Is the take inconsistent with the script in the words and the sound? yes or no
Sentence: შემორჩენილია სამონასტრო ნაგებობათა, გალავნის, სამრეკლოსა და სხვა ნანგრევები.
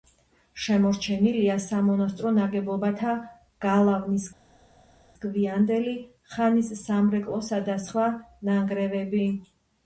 yes